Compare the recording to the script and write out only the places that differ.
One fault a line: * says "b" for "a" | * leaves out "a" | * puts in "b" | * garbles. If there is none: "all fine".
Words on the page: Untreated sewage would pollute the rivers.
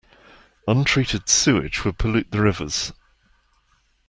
all fine